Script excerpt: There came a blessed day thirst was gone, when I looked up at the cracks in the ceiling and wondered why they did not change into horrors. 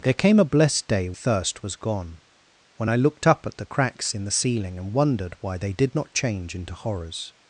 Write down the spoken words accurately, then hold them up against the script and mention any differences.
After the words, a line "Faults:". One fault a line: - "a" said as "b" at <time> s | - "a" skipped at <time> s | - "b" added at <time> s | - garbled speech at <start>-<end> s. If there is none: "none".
There came a blessed day thirst was gone, when I looked up at the cracks in the ceiling and wondered why they did not change into horrors.
Faults:
none